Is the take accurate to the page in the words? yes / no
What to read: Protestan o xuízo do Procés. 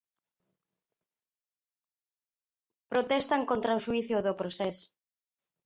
no